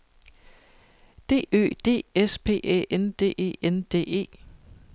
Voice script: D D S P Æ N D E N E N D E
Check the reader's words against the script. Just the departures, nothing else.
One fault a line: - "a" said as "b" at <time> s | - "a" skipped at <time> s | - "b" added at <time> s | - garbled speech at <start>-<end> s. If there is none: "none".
- "Ø" added at 1.5 s
- "E N" skipped at 3.8 s